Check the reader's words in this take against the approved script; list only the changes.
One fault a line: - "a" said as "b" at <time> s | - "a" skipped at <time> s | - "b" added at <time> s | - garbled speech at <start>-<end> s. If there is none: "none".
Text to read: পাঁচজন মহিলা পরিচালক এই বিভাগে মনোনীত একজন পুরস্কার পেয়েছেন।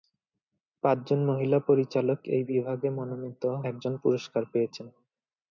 none